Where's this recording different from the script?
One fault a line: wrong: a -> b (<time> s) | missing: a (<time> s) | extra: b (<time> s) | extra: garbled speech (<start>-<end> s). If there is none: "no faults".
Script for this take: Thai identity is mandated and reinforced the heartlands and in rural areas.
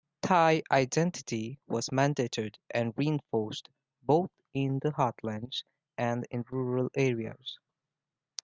wrong: is -> was (1.7 s)
extra: both in (4.0 s)